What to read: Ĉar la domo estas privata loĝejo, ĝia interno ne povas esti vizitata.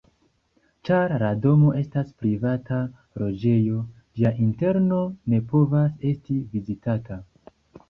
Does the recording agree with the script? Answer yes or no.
yes